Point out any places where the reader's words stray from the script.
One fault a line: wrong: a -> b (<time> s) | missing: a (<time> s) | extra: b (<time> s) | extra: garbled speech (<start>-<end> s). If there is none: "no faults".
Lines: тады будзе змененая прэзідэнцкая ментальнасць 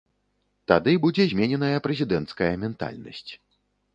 no faults